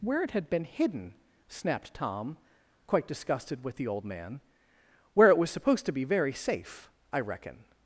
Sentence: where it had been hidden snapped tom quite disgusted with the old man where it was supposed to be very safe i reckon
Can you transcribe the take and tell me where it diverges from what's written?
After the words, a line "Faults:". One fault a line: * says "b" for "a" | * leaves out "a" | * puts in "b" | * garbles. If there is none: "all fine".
where it had been hidden snapped tom quite disgusted with the old man where it was supposed to be very safe i reckon
Faults:
all fine